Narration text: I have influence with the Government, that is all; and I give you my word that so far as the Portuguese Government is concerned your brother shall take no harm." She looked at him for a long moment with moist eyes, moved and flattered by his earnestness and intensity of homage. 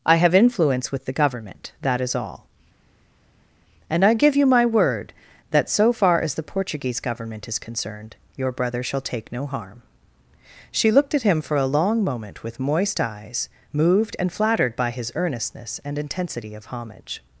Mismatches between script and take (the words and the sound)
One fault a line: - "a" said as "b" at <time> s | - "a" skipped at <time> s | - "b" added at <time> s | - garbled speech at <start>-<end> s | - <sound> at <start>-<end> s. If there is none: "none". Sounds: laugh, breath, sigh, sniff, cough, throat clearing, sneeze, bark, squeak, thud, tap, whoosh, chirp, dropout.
none